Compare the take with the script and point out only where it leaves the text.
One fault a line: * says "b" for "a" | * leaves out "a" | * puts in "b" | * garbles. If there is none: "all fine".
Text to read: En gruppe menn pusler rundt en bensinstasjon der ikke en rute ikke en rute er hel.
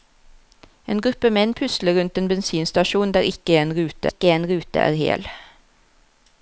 all fine